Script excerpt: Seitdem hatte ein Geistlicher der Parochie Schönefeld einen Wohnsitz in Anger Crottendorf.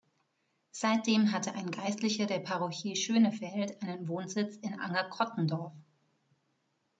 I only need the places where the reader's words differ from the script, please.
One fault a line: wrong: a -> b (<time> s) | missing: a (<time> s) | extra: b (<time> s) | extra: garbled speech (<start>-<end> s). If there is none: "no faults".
no faults